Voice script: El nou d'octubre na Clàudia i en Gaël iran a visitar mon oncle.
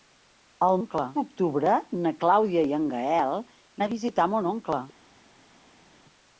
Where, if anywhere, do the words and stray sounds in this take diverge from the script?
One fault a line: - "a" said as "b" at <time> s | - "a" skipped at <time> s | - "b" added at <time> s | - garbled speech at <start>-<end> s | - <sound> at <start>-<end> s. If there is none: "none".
- "nou" said as "oncle" at 0.8 s
- "iran" skipped at 3.4 s